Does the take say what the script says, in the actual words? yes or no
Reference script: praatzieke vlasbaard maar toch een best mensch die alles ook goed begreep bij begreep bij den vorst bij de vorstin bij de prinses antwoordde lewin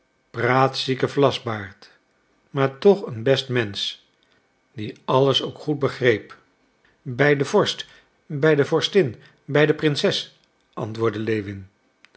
no